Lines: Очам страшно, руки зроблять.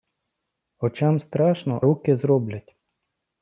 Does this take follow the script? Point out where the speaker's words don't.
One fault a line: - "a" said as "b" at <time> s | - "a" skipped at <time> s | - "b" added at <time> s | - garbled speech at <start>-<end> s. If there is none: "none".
none